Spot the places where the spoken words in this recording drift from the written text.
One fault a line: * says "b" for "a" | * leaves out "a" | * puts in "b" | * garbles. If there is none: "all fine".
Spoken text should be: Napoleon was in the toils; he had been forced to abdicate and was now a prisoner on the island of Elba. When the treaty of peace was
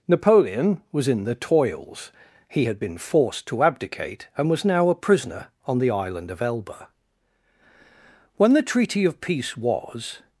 all fine